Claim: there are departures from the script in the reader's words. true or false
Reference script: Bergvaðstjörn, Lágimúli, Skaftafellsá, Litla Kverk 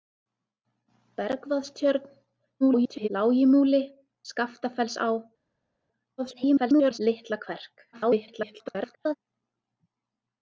true